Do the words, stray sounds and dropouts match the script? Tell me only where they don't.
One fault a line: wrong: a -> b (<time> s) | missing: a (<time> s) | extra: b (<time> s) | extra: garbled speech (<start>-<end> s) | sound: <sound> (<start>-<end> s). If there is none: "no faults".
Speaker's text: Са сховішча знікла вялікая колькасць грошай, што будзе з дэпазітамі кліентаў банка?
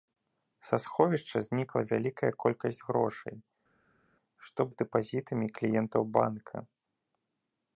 missing: будзе (4.6 s)